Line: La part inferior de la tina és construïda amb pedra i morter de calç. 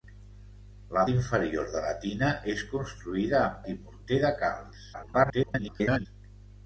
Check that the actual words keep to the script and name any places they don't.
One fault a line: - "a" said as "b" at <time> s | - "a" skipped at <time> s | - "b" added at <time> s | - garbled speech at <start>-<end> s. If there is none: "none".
- "part" skipped at 1.0 s
- "pedra" skipped at 3.6 s
- garbled speech at 4.9-6.1 s